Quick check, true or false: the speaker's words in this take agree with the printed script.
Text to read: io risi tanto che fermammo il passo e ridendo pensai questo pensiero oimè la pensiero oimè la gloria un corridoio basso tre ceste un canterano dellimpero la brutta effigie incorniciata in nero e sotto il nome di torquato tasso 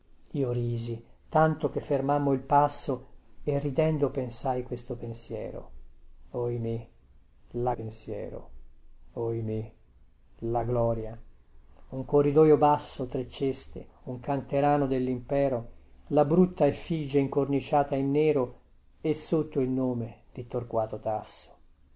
true